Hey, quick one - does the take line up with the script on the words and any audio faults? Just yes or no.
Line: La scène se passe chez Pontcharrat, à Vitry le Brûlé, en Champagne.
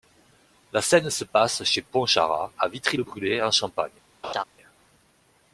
no